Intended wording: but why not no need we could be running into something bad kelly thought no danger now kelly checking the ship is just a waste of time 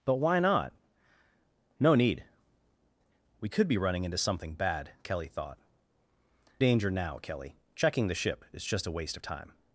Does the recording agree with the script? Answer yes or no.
no